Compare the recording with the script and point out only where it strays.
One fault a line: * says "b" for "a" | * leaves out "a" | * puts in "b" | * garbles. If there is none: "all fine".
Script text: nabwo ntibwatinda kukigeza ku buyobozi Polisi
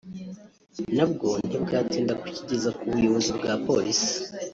* puts in "bwa"